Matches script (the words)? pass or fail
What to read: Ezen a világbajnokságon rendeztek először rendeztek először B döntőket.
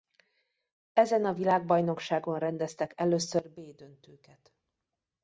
fail